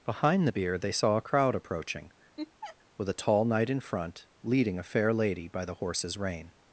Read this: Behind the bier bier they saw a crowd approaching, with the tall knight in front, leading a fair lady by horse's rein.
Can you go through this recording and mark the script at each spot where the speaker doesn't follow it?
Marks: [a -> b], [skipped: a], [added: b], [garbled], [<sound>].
Behind the bier [skipped: bier] they saw a crowd approaching, [laugh] with [the -> a] tall knight in front, leading a fair lady by [added: the] horse's rein.